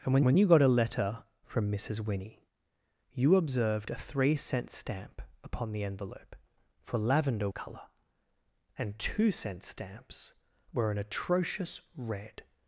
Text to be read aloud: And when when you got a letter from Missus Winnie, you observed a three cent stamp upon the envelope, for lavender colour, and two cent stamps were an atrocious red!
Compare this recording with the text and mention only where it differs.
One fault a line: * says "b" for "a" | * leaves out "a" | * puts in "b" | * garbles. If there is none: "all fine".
all fine